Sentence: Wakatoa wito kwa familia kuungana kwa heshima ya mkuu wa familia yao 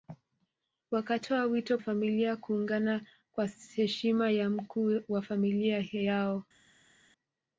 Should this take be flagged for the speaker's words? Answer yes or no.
yes